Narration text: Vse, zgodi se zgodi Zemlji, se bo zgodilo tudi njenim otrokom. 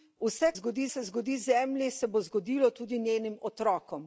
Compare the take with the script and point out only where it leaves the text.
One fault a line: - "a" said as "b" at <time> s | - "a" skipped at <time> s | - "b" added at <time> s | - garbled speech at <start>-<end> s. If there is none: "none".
none